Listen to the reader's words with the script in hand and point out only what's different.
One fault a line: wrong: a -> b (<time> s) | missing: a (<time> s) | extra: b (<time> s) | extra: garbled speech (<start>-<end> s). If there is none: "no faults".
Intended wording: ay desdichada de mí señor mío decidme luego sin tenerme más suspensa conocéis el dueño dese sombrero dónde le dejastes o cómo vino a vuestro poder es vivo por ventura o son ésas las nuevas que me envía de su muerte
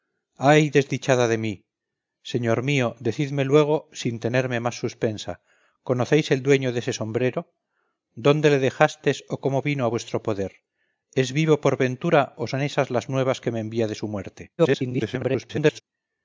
extra: garbled speech (14.6-15.8 s)